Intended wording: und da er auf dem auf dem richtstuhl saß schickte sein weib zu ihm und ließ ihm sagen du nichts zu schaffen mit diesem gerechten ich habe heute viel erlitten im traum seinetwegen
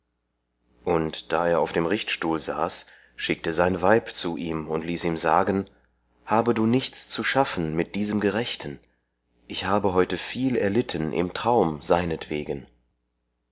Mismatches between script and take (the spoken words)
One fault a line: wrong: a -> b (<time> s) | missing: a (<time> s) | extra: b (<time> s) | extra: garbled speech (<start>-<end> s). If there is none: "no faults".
missing: auf dem (1.9 s)
extra: habe (6.2 s)